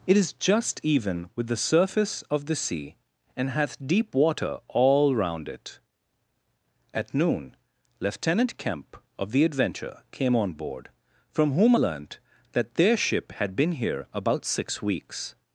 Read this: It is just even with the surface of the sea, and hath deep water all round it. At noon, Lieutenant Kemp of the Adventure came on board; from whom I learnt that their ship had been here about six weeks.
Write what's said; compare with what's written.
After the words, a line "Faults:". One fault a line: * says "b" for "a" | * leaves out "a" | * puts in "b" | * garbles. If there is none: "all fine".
It is just even with the surface of the sea, and hath deep water all round it. At noon, Lieutenant Kemp of the Adventure came on board; from whom learnt that their ship had been here about six weeks.
Faults:
* leaves out "I"